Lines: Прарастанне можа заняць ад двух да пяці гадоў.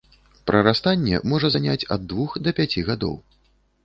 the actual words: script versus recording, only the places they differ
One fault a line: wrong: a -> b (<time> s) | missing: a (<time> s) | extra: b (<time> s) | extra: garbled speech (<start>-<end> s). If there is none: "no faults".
no faults